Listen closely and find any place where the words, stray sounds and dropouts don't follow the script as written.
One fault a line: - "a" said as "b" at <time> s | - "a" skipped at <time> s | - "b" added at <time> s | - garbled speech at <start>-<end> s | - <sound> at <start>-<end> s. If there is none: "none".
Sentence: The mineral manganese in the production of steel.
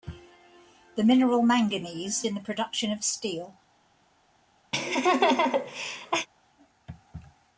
- laugh at 4.7-6.3 s